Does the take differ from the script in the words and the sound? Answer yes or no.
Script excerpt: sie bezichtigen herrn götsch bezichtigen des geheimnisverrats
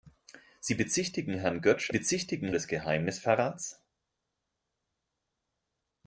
no